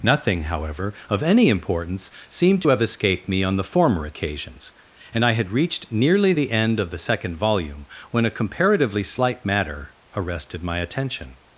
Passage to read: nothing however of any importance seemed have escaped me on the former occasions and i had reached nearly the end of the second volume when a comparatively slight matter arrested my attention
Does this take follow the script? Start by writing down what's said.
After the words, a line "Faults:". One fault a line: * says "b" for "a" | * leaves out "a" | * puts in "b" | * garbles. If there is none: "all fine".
nothing however of any importance seemed have escaped me on the former occasions and i had reached nearly the end of the second volume when a comparatively slight matter arrested my attention
Faults:
all fine